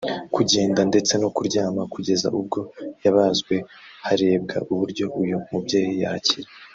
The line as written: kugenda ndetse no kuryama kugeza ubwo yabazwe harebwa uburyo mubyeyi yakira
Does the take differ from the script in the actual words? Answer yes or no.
yes